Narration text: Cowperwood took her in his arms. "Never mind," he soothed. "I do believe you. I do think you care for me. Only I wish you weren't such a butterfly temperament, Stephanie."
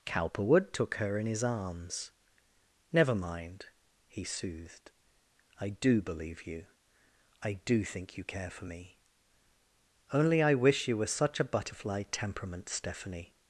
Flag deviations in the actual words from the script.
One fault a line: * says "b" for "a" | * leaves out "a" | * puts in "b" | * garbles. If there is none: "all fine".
* says "were" for "weren't"